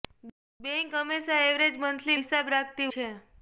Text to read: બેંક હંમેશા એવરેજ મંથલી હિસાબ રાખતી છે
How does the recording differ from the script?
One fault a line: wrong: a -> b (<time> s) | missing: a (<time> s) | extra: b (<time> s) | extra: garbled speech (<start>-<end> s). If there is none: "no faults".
no faults